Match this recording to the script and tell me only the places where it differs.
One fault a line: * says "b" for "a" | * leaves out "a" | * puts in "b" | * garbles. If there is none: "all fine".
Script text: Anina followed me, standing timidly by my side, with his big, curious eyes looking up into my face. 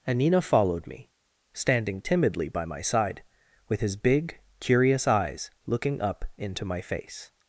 all fine